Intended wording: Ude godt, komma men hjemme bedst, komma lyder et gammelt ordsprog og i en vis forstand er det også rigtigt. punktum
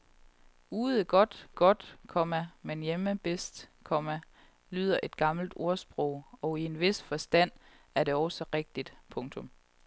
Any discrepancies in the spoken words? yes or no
yes